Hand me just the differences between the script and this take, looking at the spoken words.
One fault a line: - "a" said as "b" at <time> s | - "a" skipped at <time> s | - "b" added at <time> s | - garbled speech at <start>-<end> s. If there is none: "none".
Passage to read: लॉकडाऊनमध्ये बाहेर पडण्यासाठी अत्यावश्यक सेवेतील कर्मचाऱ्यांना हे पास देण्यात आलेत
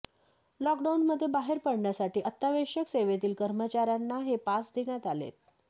none